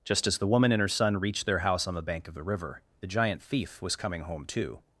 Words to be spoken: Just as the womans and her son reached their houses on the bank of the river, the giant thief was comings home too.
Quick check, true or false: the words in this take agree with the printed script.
false